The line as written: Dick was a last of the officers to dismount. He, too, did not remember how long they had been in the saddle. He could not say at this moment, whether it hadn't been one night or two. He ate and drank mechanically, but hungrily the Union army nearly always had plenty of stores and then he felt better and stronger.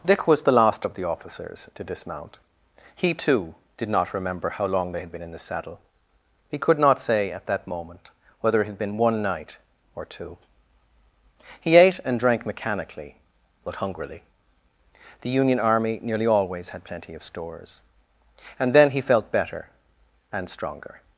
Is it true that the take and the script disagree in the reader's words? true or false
true